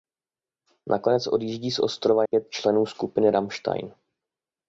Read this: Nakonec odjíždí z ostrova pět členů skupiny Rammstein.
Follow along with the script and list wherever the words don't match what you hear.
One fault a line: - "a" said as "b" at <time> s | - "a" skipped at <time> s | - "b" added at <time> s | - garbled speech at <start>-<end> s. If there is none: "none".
none